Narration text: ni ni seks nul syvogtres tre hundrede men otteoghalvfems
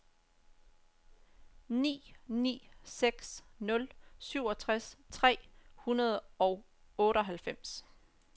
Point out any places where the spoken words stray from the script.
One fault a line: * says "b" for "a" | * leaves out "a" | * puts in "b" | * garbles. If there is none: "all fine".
* says "og" for "men"